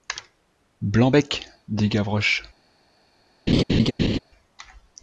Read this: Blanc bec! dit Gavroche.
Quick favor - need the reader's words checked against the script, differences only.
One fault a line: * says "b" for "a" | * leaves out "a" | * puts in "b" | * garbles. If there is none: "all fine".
all fine